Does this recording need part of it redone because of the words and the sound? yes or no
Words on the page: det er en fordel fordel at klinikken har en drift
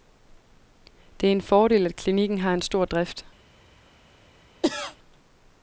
yes